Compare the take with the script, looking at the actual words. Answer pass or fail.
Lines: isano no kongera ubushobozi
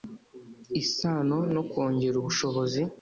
pass